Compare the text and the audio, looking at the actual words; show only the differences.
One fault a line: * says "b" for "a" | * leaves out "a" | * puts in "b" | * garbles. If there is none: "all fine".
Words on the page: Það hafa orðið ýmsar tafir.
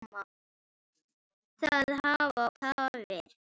* leaves out "orðið ýmsar"